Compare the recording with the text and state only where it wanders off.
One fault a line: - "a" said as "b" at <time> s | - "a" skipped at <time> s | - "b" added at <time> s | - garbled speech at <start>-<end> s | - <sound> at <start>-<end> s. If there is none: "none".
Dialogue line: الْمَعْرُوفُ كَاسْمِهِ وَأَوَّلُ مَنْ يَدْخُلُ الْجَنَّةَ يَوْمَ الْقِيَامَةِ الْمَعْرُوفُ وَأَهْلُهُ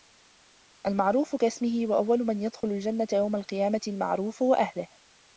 - dropout at 2.6-2.6 s